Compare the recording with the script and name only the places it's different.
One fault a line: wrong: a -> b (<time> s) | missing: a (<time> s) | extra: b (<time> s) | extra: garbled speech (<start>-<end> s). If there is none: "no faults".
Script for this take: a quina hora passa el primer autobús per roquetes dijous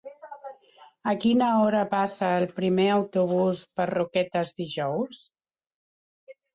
no faults